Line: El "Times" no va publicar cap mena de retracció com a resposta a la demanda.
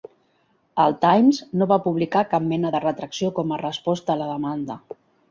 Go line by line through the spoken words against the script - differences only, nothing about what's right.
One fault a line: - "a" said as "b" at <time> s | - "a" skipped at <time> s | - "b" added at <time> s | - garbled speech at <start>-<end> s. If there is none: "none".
none